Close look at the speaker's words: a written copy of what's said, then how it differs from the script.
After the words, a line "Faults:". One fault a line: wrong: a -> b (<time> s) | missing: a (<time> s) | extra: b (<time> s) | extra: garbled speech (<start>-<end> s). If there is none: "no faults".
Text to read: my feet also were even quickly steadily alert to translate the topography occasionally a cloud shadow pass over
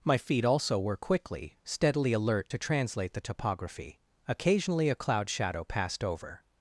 my feet also were quickly steadily alert to translate the topography occasionally a cloud shadow passed over
Faults:
missing: even (1.0 s)
wrong: pass -> passed (5.6 s)